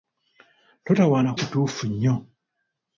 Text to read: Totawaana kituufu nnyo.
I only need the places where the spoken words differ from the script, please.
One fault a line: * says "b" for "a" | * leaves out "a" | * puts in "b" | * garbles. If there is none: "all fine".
all fine